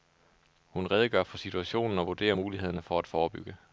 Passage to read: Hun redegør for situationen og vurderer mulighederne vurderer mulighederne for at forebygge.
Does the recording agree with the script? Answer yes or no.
no